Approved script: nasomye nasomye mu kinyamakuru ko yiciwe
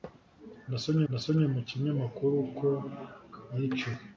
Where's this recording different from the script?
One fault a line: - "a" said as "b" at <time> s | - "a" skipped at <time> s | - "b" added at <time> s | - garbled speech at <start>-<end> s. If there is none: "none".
none